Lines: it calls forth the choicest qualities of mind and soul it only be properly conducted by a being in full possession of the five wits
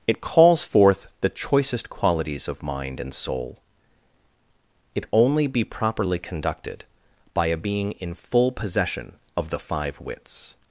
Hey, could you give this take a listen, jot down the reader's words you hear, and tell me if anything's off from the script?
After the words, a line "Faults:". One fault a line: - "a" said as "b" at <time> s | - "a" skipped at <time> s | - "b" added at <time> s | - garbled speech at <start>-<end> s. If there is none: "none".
it calls forth the choicest qualities of mind and soul it only be properly conducted by a being in full possession of the five wits
Faults:
none